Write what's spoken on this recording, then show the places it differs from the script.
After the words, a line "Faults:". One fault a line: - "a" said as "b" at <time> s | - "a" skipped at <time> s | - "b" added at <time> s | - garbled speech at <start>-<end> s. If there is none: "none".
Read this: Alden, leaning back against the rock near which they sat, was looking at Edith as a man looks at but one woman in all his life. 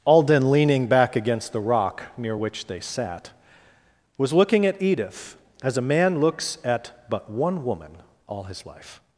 Alden, leaning back against the rock near which they sat, was looking at Edith as a man looks at but one woman all his life.
Faults:
- "in" skipped at 7.9 s